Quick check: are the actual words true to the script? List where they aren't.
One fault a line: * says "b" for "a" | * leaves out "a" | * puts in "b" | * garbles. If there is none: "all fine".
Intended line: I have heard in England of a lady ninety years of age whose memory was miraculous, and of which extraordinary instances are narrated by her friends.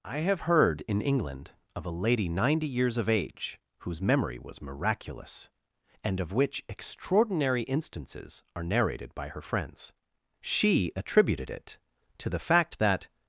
* puts in "She attributed it to the fact that"